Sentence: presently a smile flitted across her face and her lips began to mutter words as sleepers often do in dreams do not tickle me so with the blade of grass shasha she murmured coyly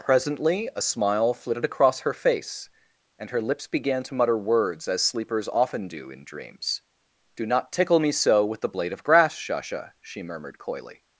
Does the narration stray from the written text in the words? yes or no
no